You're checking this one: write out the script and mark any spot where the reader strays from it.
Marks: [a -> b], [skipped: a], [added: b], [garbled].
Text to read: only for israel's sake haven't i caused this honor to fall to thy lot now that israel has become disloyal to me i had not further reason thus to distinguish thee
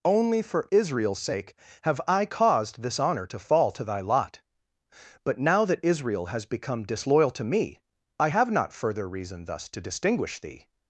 only for israel's sake [haven't -> have] i caused this honor to fall to thy lot [added: but] now that israel has become disloyal to me i [had -> have] not further reason thus to distinguish thee